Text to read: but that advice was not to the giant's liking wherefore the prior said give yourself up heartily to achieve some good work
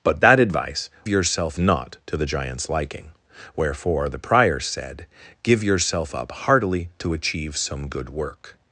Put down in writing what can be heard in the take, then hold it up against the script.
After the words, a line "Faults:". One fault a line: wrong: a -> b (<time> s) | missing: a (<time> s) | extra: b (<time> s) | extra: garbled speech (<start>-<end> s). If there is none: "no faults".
but that advice yourself not to the giant's liking wherefore the prior said give yourself up heartily to achieve some good work
Faults:
wrong: was -> yourself (1.1 s)